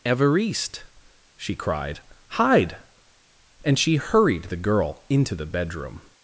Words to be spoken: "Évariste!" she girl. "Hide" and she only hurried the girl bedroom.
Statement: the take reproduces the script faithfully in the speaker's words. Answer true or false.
false